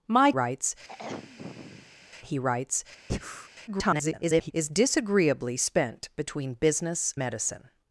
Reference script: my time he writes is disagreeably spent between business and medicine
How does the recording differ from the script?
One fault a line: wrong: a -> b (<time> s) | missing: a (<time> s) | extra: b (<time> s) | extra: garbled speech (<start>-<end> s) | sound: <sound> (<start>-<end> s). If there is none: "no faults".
wrong: time -> writes (0.3 s)
sound: throat clearing (0.9-2.1 s)
sound: breath (3.1-3.5 s)
extra: garbled speech (3.7-4.5 s)
missing: and (7.1 s)